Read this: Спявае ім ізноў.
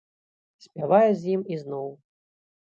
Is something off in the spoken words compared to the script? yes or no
yes